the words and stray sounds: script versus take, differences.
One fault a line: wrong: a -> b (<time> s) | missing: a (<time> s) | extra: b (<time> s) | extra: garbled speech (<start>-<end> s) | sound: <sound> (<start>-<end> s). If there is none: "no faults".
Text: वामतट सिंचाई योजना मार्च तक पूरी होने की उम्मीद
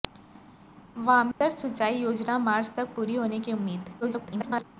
sound: dropout (1.3-1.4 s)
extra: garbled speech (4.0-4.6 s)